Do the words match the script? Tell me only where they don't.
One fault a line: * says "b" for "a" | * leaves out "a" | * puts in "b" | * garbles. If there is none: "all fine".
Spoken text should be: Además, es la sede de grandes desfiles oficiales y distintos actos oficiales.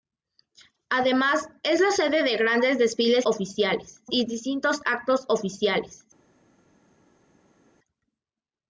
all fine